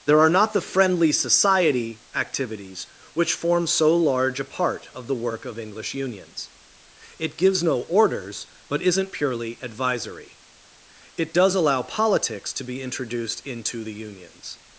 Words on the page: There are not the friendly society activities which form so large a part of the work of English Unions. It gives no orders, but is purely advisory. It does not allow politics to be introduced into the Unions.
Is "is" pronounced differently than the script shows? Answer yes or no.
yes